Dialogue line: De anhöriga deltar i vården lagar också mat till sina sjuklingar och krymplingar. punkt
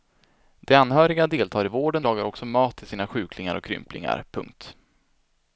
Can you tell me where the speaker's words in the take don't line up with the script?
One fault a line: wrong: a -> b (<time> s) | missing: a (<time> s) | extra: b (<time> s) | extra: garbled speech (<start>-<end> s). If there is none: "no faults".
no faults